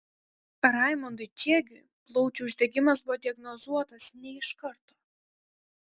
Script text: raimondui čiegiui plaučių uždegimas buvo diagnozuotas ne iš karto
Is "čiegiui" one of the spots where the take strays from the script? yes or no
no